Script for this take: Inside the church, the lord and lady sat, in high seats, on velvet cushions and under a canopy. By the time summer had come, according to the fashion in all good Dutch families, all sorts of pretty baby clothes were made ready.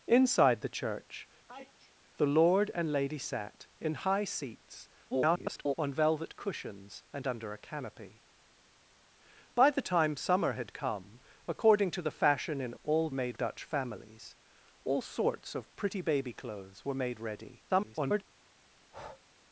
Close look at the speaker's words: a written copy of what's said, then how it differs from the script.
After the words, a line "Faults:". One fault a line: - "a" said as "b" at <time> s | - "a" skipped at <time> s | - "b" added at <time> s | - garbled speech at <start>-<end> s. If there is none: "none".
Inside the church, the lord and lady sat, in high seats, [garbled] on velvet cushions and under a canopy. By the time summer had come, according to the fashion in all made Dutch families, all sorts of pretty baby clothes were made ready. [garbled]
Faults:
- garbled speech at 5.1-5.7 s
- "good" said as "made" at 13.1 s
- garbled speech at 17.7-18.2 s